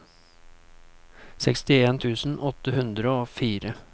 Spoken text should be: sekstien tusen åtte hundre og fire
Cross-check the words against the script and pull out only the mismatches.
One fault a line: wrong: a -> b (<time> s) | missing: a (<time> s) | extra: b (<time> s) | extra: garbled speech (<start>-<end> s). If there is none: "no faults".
no faults